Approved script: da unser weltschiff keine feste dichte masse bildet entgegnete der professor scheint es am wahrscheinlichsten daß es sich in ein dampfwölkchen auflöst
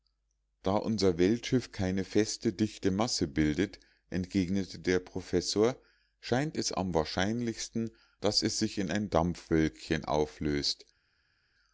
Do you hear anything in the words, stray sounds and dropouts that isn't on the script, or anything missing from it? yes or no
no